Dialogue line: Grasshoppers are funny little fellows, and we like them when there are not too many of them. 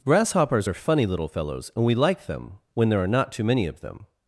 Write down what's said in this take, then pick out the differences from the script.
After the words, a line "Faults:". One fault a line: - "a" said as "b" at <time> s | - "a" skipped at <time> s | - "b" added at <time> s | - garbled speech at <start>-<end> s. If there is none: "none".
Grasshoppers are funny little fellows, and we like them when there are not too many of them.
Faults:
none